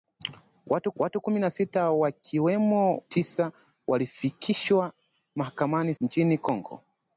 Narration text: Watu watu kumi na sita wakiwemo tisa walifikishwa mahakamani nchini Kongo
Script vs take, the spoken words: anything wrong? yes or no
no